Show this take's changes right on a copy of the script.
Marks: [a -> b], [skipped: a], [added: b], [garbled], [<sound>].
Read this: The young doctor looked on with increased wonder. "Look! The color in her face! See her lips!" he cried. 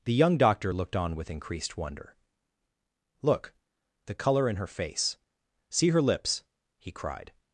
The young doctor looked on with increased wonder. "Look! The color in her face! See her lips!" he cried.